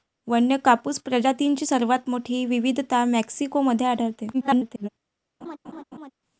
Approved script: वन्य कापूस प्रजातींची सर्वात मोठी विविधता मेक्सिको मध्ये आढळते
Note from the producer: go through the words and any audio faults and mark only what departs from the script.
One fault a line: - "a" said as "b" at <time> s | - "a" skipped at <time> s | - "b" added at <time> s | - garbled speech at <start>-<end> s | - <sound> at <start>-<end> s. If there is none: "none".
- garbled speech at 4.3-4.9 s
- laugh at 5.4-6.1 s